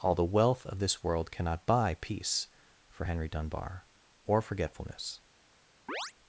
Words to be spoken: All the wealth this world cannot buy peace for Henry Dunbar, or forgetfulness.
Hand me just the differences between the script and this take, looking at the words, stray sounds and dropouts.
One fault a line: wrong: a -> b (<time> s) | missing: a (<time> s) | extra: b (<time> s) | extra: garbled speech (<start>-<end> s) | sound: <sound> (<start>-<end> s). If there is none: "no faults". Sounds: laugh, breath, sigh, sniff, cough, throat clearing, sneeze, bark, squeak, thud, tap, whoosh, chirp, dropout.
extra: of (0.7 s)
sound: chirp (5.9-6.1 s)